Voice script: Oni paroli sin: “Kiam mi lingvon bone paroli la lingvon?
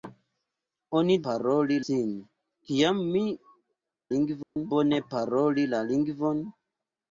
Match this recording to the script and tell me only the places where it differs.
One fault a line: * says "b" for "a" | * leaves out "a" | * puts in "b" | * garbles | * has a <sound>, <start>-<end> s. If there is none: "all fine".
* has a dropout, 4.4-4.6 s